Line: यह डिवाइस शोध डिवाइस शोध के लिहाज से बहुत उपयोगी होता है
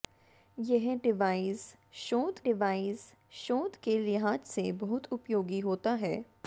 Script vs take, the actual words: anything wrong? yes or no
no